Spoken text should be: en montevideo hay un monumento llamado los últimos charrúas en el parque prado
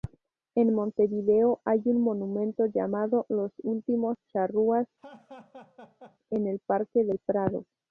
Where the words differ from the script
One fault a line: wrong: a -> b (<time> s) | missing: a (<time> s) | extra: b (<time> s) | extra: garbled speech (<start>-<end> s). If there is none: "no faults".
extra: del (7.0 s)